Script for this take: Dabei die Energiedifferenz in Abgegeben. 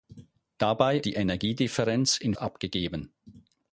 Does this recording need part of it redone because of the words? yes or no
no